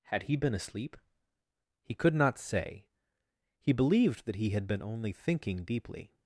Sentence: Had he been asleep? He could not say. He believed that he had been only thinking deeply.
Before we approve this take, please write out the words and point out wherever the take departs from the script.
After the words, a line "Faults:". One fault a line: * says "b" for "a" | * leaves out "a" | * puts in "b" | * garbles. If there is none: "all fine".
Had he been asleep? He could not say. He believed that he had been only thinking deeply.
Faults:
all fine